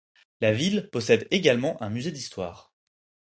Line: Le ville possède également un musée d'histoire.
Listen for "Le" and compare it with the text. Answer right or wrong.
wrong